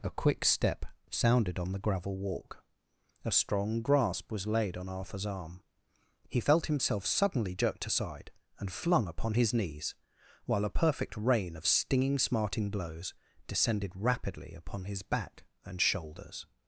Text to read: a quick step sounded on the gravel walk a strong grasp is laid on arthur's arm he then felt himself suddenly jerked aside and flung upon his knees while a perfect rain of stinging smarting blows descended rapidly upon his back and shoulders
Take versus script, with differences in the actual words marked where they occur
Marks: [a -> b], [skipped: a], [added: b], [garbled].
a quick step sounded on the gravel walk a strong grasp [is -> was] laid on arthur's arm he [skipped: then] felt himself suddenly jerked aside and flung upon his knees while a perfect rain of stinging smarting blows descended rapidly upon his back and shoulders